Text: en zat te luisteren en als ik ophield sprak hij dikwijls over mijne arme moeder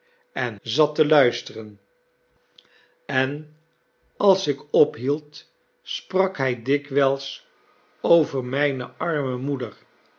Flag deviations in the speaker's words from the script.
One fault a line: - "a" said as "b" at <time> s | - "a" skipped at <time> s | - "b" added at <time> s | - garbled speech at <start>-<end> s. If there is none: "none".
none